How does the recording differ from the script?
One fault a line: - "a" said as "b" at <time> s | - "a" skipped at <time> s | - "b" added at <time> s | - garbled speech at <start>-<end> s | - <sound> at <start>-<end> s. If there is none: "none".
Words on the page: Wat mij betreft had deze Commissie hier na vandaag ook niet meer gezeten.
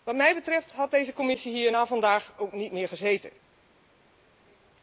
none